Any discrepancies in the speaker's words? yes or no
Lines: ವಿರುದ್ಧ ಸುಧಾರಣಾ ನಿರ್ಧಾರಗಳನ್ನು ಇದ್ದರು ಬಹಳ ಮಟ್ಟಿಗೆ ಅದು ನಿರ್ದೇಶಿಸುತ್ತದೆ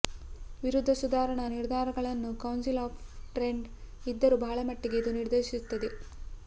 yes